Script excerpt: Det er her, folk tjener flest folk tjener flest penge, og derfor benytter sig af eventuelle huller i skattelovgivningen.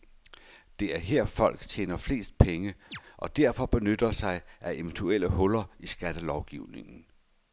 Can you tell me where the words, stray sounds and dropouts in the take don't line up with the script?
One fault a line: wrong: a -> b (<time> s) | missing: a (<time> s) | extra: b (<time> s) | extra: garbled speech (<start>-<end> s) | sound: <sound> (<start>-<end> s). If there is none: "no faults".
missing: folk tjener flest (2.4 s)
sound: chirp (2.9-3.0 s)